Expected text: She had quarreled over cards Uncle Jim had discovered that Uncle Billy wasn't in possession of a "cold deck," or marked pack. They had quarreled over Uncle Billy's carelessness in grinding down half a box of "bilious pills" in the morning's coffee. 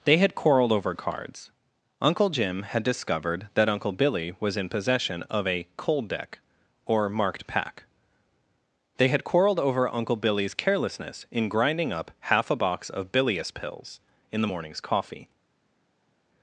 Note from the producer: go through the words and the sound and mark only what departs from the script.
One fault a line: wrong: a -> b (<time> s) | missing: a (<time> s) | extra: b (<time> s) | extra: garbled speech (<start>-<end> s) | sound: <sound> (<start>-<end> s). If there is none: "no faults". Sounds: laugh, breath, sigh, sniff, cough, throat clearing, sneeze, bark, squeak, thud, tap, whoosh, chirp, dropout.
wrong: She -> They (0.0 s)
wrong: wasn't -> was (4.4 s)
wrong: down -> up (11.9 s)